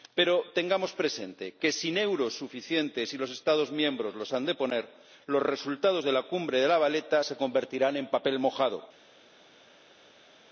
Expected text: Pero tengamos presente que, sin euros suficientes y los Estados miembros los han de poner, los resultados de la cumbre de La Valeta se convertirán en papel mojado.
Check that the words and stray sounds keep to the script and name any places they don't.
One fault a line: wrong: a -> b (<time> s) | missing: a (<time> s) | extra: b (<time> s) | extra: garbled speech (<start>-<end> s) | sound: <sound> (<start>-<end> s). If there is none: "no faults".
no faults